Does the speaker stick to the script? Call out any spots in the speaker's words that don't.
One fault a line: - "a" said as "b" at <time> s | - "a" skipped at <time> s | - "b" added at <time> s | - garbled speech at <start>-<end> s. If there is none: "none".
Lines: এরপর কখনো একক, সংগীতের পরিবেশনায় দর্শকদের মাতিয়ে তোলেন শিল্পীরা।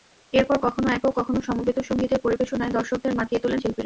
- "কখনো সমবেত" added at 1.2 s